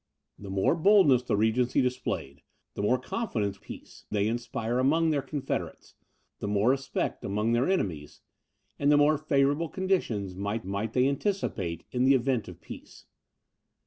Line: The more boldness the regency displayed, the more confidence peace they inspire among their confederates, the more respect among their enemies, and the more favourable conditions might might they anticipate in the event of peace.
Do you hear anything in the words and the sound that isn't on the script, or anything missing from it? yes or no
no